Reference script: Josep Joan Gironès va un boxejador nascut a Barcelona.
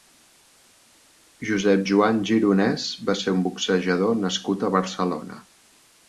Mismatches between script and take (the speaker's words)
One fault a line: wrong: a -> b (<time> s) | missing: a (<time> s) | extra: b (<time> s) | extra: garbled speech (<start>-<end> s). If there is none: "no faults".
extra: ser (3.2 s)